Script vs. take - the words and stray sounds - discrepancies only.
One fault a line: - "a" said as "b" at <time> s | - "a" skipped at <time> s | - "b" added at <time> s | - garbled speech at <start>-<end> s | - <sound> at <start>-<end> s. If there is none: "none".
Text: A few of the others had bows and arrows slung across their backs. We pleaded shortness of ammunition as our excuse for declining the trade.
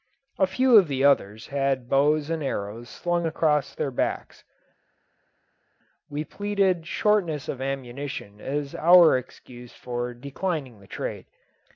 none